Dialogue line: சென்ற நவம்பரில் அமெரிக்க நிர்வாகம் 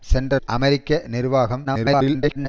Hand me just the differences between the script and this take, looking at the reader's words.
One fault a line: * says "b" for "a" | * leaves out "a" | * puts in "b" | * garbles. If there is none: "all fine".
* leaves out "நவம்பரில்"
* garbles